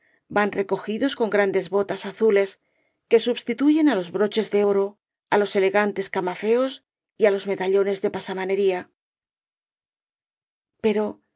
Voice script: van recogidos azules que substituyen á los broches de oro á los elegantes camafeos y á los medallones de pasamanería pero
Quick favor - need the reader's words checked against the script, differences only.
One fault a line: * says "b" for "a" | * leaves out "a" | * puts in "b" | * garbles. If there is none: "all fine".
* puts in "con grandes botas"